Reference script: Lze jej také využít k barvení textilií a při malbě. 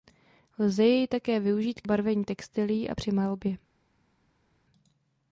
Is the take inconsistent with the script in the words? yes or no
no